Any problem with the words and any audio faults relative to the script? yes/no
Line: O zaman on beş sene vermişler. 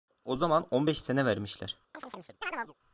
yes